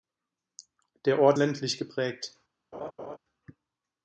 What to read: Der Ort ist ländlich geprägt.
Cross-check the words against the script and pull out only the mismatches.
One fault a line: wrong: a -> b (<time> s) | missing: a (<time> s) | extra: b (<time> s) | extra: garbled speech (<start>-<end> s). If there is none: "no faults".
missing: ist (1.4 s)